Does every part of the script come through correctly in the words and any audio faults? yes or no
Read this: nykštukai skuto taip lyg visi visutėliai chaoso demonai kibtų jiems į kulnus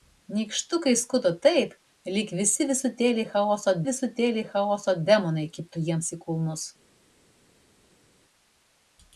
no